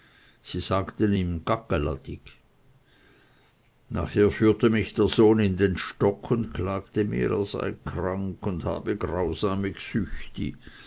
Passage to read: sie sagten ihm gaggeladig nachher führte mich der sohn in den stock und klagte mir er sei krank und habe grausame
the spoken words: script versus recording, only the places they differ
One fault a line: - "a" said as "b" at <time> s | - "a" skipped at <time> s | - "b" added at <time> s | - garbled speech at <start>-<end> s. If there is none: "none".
none